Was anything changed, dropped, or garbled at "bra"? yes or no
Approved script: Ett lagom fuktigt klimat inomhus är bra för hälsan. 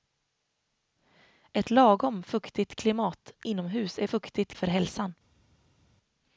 yes